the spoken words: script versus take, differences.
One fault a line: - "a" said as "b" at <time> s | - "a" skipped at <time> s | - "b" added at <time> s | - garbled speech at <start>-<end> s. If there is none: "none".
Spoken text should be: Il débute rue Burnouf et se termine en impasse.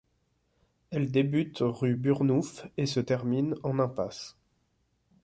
- "Il" said as "Elle" at 0.9 s